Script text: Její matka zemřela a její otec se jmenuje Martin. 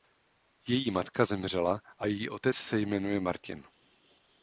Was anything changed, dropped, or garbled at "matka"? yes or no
no